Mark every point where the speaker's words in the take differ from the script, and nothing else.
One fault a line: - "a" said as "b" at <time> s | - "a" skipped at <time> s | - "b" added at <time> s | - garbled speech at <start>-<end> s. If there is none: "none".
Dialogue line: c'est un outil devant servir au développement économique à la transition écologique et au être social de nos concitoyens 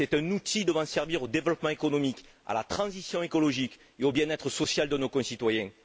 - "bien" added at 4.1 s